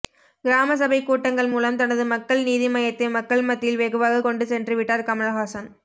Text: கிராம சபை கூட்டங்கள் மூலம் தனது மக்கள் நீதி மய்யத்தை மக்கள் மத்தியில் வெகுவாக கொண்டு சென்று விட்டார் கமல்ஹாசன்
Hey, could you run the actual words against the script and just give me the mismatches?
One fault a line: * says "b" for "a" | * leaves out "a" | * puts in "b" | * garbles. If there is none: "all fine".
all fine